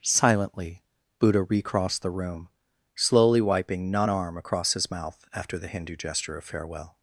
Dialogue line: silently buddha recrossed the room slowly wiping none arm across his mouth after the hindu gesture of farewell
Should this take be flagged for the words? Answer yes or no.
no